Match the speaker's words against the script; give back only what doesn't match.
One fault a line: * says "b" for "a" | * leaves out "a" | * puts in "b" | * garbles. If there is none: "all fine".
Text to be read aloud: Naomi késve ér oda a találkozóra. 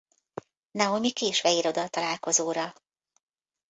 all fine